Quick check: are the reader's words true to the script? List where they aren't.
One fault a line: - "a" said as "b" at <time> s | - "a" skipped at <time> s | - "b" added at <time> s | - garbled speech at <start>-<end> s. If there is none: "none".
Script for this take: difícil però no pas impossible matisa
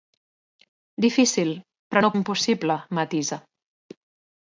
- "pas" skipped at 2.1 s